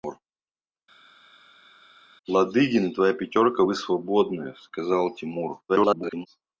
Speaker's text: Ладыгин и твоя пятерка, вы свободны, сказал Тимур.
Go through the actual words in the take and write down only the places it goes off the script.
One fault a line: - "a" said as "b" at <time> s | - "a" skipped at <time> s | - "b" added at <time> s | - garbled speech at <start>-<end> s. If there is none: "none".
- garbled speech at 5.7-6.3 s